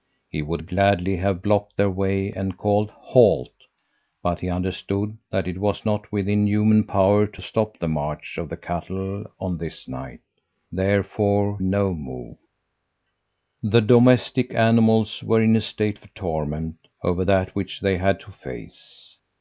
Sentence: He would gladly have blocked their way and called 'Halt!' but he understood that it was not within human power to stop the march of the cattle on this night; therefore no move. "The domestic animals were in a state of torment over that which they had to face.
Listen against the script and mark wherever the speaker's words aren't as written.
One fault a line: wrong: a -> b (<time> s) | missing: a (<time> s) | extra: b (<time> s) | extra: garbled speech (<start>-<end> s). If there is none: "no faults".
no faults